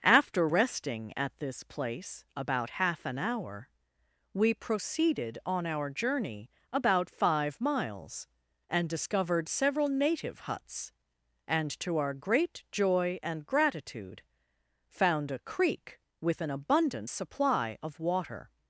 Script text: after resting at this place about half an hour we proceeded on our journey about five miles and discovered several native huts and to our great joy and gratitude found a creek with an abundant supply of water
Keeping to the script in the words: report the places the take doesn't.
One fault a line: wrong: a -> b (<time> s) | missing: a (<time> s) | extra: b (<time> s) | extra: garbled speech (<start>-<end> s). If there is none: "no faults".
no faults